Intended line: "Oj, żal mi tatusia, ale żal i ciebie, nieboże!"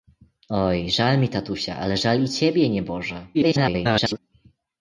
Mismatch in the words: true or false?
true